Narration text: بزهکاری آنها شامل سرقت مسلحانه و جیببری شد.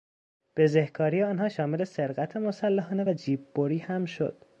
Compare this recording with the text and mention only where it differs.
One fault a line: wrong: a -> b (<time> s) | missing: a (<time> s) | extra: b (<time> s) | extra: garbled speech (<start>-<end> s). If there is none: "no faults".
extra: هم (3.8 s)